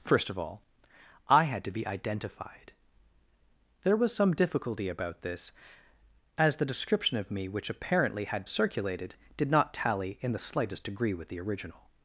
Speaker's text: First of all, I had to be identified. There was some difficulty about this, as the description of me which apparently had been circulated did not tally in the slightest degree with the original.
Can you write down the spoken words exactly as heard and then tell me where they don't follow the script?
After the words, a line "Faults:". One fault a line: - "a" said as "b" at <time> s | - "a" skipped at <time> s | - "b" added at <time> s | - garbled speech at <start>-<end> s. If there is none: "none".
First of all, I had to be identified. There was some difficulty about this, as the description of me which apparently had circulated did not tally in the slightest degree with the original.
Faults:
- "been" skipped at 8.4 s